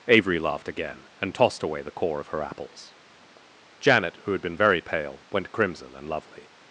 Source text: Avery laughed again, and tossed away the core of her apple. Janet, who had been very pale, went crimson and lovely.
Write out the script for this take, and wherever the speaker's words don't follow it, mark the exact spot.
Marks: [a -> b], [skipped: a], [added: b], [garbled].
Avery laughed again, and tossed away the core of her [apple. -> apples] Janet, who had been very pale, went crimson and lovely.